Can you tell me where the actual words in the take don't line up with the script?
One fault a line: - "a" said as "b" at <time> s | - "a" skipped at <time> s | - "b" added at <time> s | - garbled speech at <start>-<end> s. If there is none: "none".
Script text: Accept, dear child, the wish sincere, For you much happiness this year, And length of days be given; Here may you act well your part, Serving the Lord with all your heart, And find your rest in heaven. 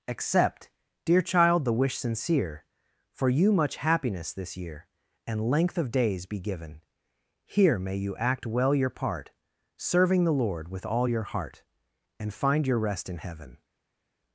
none